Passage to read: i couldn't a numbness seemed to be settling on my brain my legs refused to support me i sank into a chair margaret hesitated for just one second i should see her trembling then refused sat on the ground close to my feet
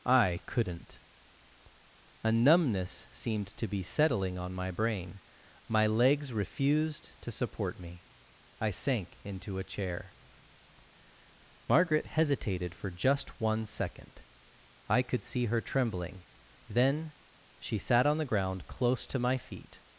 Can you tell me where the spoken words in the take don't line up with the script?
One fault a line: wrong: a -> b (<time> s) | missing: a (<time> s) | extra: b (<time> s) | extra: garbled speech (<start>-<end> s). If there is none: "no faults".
wrong: should -> could (15.0 s)
wrong: refused -> she (17.6 s)